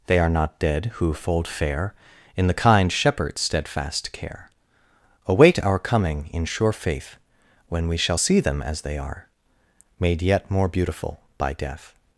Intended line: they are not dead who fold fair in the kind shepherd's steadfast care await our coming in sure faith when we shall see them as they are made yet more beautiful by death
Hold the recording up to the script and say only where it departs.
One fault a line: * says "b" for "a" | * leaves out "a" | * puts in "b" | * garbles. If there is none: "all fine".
all fine